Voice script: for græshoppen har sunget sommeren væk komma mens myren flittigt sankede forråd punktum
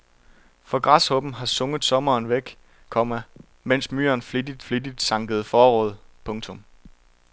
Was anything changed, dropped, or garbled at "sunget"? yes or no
no